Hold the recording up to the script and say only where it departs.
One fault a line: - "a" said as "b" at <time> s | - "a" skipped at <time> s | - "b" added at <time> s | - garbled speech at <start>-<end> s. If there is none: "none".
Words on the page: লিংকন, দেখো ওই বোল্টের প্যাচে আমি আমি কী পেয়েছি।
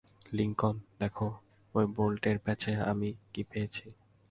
- "আমি" skipped at 3.1 s